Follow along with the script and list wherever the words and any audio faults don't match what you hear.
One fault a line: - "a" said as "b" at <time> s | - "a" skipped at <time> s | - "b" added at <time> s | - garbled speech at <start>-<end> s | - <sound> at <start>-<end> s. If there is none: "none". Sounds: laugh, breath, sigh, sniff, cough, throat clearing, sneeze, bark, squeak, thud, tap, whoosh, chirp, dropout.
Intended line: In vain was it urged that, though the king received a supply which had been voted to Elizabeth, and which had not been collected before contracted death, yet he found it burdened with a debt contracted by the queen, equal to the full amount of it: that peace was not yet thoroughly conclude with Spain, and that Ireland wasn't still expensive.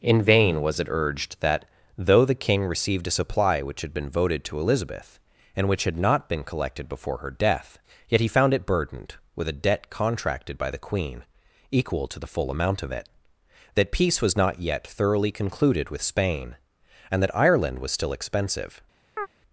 - "contracted" said as "her" at 7.2 s
- "conclude" said as "concluded" at 15.3 s
- "wasn't" said as "was" at 17.8 s
- chirp at 19.2-19.3 s